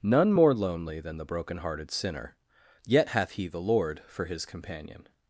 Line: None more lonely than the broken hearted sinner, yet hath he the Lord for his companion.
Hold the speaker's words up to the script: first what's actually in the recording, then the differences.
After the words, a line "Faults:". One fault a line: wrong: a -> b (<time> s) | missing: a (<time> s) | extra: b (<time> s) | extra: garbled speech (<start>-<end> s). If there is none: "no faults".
None more lonely than the broken hearted sinner, yet hath he the Lord for his companion.
Faults:
no faults